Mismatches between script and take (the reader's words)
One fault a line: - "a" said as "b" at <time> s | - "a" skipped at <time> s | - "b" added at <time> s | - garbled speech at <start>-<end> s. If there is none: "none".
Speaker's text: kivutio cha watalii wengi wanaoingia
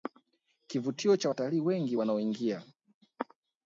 none